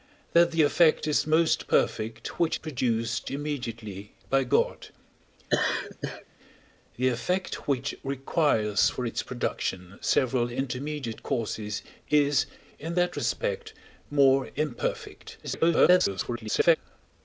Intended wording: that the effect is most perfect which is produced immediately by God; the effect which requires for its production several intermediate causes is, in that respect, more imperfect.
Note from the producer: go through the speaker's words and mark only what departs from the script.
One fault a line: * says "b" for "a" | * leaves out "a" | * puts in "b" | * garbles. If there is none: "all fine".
* leaves out "is"
* garbles